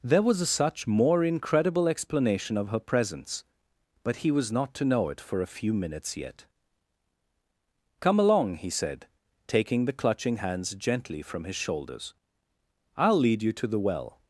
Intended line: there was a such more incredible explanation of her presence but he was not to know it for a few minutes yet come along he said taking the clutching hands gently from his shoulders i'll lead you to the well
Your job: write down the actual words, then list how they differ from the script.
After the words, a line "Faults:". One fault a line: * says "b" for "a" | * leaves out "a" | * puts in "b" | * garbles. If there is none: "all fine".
there was a such more incredible explanation of her presence but he was not to know it for a few minutes yet come along he said taking the clutching hands gently from his shoulders i'll lead you to the well
Faults:
all fine